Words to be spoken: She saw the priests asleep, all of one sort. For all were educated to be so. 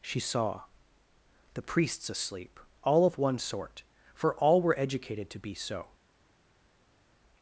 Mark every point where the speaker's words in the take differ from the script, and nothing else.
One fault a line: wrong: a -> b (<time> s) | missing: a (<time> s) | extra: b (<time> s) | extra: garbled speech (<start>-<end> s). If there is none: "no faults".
no faults